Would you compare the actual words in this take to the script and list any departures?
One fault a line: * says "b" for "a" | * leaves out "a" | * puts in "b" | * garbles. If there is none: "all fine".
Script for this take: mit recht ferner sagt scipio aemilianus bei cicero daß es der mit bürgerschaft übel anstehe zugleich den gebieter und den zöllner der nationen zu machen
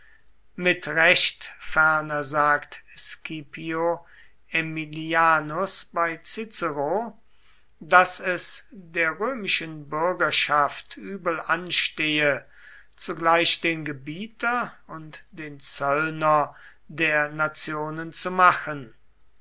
* says "römischen" for "mit"